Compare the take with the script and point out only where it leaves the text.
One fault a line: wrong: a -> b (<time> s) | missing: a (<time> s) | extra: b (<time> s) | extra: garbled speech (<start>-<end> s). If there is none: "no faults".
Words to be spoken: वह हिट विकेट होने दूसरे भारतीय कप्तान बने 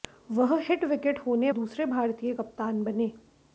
no faults